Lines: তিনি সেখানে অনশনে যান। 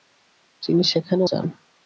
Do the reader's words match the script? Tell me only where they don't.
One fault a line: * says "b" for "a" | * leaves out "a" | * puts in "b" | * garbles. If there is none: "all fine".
* leaves out "অনশনে"